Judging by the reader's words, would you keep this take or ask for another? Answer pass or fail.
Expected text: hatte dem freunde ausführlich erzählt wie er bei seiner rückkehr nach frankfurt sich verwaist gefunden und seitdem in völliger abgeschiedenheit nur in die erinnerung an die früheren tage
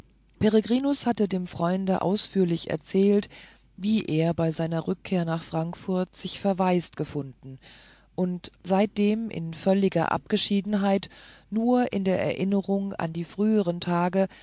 fail